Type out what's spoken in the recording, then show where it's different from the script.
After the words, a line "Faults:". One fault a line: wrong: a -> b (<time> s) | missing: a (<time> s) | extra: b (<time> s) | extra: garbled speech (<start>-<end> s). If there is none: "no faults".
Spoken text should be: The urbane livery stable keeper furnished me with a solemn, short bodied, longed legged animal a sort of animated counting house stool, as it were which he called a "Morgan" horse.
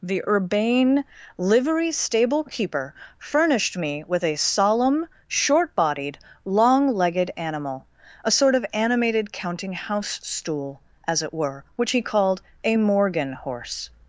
The urbane livery stable keeper furnished me with a solemn, short bodied, long legged animal a sort of animated counting house stool, as it were which he called a "Morgan" horse.
Faults:
wrong: longed -> long (6.4 s)